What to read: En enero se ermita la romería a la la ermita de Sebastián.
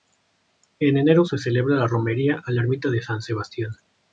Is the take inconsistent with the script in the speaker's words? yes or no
yes